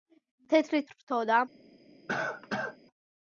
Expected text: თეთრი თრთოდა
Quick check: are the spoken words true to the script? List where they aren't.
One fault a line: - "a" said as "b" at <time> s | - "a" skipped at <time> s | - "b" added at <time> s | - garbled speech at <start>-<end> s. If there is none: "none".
none